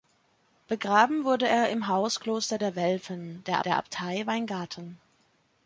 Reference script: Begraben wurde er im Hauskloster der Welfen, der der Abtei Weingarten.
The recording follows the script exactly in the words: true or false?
true